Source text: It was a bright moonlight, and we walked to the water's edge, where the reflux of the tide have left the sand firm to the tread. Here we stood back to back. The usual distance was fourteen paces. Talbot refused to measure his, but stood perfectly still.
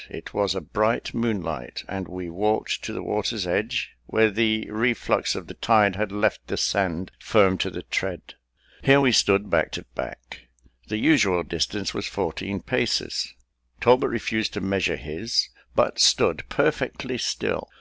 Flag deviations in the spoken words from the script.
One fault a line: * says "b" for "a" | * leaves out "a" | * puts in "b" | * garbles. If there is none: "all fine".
* says "had" for "have"